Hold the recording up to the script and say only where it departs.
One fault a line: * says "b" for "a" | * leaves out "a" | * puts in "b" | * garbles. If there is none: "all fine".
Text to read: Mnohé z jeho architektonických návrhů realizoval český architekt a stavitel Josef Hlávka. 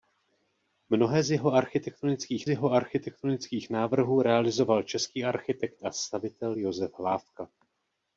* puts in "jeho architektonických"